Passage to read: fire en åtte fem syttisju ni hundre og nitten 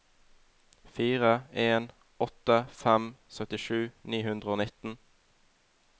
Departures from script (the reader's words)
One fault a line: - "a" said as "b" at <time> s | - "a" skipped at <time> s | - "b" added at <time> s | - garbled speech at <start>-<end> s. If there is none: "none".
none